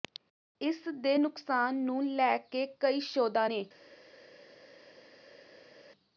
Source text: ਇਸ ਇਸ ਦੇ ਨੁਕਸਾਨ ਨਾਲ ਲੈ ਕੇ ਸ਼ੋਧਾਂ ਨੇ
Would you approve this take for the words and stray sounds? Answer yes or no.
no